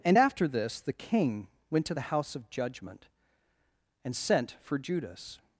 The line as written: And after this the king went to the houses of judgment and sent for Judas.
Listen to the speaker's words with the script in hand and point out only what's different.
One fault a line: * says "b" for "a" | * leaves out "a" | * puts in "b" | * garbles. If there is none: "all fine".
* says "house" for "houses"